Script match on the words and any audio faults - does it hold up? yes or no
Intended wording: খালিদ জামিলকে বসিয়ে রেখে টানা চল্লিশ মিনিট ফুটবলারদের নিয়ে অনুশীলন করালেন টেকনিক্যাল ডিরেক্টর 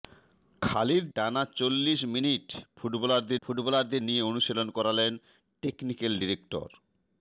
no